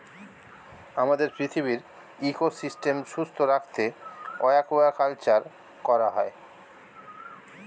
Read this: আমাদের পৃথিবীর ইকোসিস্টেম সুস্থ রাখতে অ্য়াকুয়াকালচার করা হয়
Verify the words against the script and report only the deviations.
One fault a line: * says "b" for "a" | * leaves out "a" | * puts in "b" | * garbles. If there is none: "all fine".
all fine